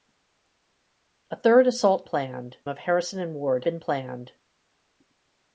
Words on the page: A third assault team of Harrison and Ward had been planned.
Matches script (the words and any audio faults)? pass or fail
fail